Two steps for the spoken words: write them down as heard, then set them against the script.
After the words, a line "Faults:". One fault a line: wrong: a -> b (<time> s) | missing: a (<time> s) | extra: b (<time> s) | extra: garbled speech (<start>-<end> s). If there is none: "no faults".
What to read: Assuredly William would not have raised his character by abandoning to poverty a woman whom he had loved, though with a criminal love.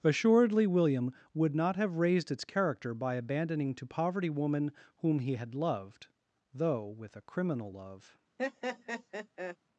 Assuredly William would not have raised its character by abandoning to poverty woman whom he had loved, though with a criminal love.
Faults:
wrong: his -> its (2.3 s)
missing: a (4.3 s)